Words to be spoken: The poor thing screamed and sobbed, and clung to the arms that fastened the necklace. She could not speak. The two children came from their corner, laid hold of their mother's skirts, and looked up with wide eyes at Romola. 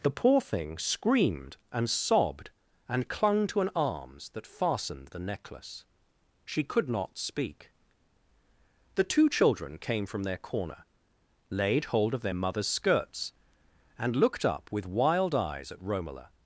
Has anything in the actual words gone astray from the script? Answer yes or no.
yes